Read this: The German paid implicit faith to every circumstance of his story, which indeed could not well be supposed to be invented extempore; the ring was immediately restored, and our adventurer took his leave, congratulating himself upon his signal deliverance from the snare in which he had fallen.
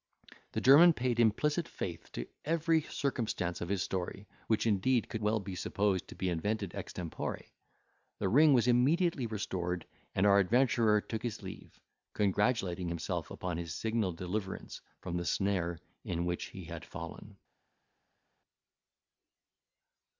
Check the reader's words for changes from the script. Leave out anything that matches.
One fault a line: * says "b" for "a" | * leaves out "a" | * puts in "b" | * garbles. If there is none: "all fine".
* leaves out "not"